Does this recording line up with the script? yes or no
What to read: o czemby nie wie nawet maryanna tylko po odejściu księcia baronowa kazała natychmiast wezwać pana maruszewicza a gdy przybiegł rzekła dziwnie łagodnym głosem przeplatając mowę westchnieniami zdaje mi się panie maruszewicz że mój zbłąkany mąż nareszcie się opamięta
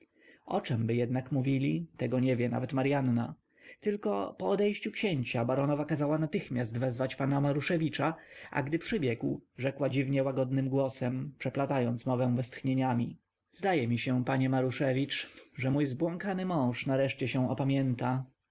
no